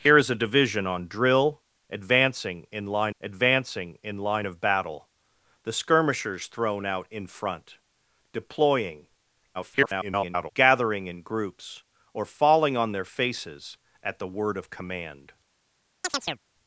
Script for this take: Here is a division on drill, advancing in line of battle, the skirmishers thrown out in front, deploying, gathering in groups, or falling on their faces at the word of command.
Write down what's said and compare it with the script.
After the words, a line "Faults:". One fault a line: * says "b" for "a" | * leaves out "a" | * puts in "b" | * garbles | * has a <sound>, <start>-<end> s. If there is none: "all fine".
Here is a division on drill, advancing in line advancing in line of battle, the skirmishers thrown out in front, deploying, [garbled] gathering in groups, or falling on their faces at the word of command.
Faults:
* puts in "advancing in line"
* garbles
* has a chirp, 16.0-16.4 s